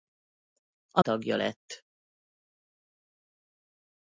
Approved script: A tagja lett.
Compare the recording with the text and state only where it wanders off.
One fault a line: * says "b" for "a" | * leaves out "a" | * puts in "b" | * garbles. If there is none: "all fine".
all fine